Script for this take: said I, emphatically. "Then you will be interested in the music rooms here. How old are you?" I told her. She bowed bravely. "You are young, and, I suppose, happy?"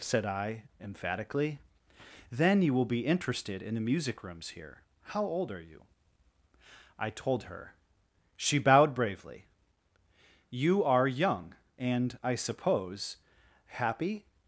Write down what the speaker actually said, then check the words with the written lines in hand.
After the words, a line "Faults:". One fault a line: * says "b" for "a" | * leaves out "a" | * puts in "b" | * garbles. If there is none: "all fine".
said I, emphatically. "Then you will be interested in the music rooms here. How old are you?" I told her. She bowed bravely. "You are young, and, I suppose, happy?"
Faults:
all fine